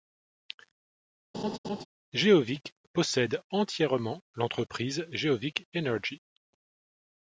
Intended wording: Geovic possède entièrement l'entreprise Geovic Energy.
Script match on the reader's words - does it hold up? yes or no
yes